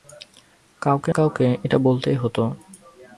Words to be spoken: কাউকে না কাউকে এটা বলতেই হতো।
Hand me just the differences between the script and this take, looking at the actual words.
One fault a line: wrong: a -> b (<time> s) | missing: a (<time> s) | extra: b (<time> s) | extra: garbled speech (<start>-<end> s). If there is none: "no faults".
missing: না (1.1 s)